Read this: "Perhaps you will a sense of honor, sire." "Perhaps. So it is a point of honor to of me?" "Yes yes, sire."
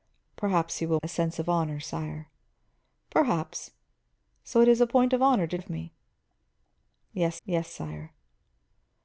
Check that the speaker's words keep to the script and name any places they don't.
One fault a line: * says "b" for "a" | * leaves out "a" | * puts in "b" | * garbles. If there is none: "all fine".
all fine